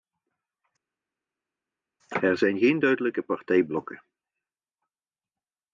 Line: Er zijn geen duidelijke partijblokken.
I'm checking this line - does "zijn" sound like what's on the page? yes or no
yes